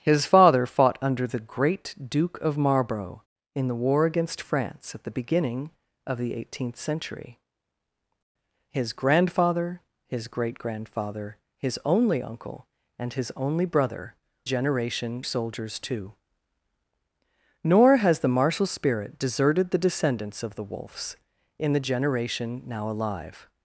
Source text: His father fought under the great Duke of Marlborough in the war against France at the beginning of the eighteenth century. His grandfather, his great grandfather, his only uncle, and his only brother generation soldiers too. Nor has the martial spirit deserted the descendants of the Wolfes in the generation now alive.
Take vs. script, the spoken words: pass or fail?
pass